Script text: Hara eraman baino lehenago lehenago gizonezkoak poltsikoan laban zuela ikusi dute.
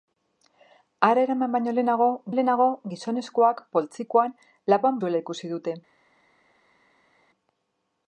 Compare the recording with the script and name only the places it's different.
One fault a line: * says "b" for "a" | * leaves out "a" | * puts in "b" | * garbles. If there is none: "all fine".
all fine